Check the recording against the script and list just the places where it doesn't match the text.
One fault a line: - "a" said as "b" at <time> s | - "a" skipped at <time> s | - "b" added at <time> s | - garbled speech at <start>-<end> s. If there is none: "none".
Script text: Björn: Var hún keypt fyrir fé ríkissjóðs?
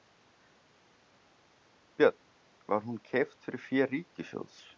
none